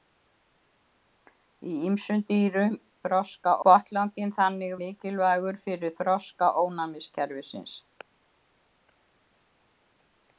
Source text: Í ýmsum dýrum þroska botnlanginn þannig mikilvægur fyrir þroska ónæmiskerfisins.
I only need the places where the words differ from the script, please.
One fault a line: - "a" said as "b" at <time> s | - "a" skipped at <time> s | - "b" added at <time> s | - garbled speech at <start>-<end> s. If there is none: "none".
none